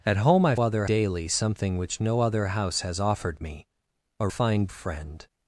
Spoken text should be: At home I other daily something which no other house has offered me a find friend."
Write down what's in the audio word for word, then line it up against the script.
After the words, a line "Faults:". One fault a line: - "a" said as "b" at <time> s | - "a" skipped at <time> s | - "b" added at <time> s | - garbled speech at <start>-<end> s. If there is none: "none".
At home I other daily something which no other house has offered me a find friend."
Faults:
none